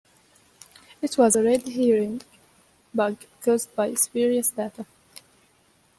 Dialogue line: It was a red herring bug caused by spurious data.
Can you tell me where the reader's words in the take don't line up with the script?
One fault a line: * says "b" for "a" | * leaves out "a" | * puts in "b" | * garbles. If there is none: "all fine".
all fine